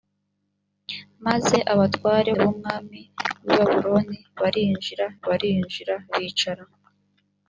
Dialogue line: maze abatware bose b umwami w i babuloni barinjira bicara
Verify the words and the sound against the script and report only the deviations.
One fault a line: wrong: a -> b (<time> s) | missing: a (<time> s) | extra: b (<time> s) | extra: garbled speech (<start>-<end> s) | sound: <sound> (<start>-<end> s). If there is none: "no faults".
missing: bose (2.3 s)
extra: barinjira (5.3 s)